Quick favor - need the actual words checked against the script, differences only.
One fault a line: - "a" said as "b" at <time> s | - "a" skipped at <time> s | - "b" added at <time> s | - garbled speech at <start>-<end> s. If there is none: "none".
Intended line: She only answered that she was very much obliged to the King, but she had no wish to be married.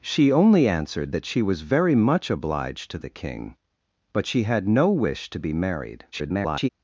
- garbled speech at 6.1-6.7 s